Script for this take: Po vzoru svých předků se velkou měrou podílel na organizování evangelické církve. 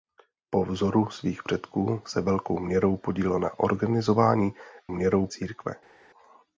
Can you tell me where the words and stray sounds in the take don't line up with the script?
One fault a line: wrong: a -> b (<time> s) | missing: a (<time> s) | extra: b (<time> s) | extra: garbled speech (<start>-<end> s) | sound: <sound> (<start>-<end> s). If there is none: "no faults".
wrong: evangelické -> měrou (4.9 s)